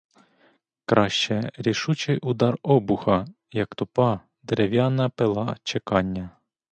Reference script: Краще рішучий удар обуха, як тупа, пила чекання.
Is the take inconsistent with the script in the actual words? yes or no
yes